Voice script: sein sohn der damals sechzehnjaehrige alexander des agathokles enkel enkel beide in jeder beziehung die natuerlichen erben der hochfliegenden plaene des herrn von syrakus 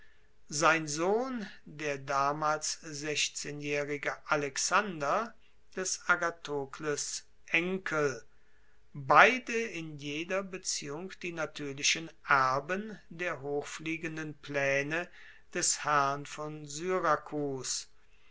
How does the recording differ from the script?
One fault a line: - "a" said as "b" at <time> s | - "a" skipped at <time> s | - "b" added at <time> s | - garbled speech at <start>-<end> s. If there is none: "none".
- "enkel" skipped at 8.2 s